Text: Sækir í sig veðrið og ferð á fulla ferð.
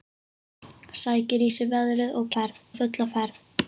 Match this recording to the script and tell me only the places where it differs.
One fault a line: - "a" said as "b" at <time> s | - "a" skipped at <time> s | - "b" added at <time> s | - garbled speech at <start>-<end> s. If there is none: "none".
none